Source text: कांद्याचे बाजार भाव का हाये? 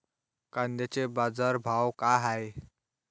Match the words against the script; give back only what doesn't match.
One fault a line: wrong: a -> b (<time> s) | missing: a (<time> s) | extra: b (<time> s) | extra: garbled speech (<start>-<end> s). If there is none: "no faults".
no faults